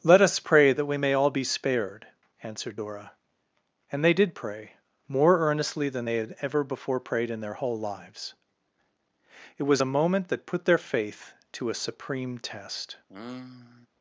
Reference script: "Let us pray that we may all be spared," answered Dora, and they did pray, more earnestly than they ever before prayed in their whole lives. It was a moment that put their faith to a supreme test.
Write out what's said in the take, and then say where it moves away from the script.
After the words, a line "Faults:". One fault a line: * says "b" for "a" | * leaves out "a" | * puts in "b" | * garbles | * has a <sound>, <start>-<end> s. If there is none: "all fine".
"Let us pray that we may all be spared," answered Dora, and they did pray, more earnestly than they had ever before prayed in their whole lives. It was a moment that put their faith to a supreme test.
Faults:
* puts in "had"
* has a sigh, 13.1-13.9 s